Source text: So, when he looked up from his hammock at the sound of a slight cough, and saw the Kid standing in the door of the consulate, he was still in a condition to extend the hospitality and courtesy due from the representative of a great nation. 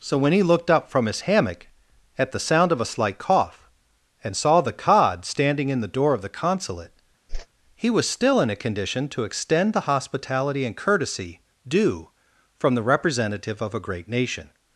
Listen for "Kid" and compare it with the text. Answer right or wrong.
wrong